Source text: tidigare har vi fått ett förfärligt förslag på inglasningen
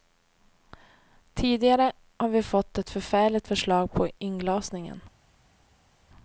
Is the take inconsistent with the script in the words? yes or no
no